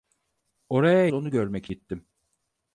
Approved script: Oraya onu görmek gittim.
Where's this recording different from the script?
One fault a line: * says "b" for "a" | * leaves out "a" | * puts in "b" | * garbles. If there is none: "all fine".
all fine